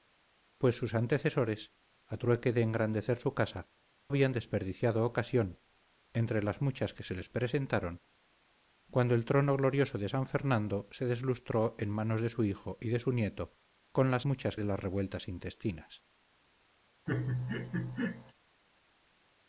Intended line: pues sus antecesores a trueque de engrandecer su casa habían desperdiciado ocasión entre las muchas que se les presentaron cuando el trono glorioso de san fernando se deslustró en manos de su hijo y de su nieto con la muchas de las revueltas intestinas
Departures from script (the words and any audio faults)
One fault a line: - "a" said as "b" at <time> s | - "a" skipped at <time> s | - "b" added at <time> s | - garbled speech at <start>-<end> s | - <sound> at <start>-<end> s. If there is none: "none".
- laugh at 17.1-18.3 s